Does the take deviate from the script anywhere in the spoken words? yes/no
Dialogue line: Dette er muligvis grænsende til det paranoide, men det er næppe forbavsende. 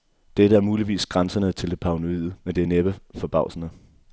no